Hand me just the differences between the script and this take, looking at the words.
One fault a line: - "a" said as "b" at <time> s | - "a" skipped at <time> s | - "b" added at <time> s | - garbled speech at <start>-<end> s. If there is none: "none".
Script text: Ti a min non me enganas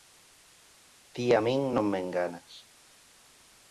none